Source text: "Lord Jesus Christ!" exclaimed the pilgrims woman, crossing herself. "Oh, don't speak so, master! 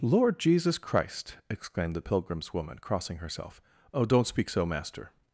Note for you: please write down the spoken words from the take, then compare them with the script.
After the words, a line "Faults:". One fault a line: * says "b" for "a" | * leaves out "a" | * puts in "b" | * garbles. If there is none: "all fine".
"Lord Jesus Christ!" exclaimed the pilgrims woman, crossing herself. "Oh, don't speak so, master!
Faults:
all fine